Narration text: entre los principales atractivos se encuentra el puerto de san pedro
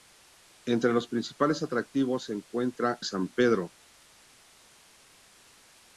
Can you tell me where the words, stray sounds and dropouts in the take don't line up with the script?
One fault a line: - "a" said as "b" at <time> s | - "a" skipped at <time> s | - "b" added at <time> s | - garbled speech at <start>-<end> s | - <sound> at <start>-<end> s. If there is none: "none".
- "el puerto de" skipped at 3.0 s